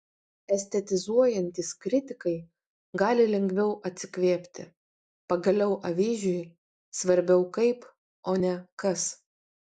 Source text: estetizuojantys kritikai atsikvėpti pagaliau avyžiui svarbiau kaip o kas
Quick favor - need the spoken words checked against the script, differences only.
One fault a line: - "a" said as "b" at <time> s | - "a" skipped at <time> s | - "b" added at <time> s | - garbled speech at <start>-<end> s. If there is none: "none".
- "gali lengviau" added at 3.0 s
- "ne" added at 8.4 s